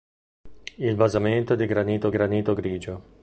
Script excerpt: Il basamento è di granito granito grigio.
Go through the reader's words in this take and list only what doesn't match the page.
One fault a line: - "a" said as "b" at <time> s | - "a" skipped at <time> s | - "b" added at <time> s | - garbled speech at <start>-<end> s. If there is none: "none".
none